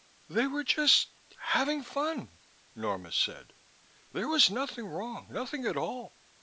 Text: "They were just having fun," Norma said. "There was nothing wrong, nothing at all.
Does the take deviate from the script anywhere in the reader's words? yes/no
no